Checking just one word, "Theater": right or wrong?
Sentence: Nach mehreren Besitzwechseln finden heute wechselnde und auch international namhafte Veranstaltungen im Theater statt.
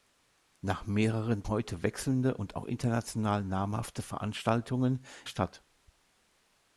wrong